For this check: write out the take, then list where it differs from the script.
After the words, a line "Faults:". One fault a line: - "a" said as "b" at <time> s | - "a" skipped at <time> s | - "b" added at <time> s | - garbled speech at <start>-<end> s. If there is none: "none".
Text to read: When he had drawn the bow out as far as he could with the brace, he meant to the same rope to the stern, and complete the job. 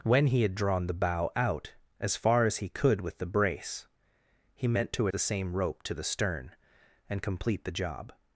When he had drawn the bow out as far as he could with the brace, he meant to the same rope to the stern, and complete the job.
Faults:
none